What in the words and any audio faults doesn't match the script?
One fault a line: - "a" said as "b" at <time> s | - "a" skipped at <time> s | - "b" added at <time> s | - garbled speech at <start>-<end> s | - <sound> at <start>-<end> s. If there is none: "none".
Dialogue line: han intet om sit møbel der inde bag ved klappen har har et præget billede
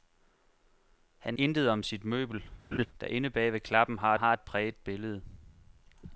- laugh at 2.7-2.9 s